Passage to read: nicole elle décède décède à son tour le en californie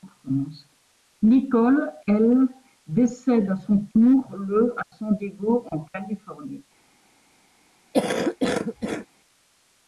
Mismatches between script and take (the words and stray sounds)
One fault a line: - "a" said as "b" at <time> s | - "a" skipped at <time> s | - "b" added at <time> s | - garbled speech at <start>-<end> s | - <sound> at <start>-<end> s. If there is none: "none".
- "décède" skipped at 3.5 s
- "à san diego" added at 4.8 s
- cough at 7.9-9.1 s